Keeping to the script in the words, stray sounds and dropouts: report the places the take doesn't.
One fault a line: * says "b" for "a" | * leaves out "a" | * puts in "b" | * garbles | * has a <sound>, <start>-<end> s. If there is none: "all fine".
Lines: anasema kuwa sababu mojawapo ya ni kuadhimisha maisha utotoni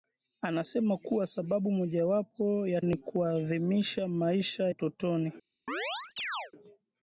* has a chirp, 5.7-6.5 s